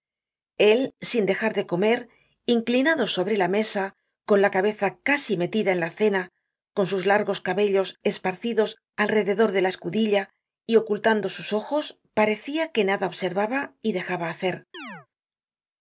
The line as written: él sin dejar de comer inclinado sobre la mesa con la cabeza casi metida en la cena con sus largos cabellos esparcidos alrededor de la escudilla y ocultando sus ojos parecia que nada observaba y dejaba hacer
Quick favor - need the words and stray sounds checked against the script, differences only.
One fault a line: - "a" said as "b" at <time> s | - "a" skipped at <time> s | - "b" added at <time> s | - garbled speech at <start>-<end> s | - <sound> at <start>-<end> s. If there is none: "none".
- chirp at 14.7-15.1 s